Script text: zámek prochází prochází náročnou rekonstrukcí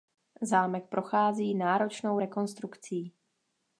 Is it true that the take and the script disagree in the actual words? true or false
true